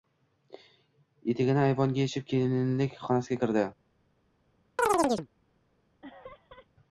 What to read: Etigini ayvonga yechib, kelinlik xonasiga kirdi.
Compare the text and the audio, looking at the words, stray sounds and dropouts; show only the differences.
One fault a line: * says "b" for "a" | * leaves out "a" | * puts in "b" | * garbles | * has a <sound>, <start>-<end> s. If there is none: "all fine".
* has a chirp, 4.8-5.3 s
* has a laugh, 6.0-6.7 s